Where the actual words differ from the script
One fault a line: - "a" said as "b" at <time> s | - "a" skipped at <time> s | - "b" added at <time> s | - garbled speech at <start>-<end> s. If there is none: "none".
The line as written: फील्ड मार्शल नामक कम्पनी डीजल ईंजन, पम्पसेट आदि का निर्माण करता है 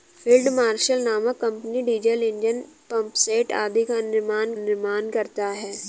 - "निर्माण" added at 4.6 s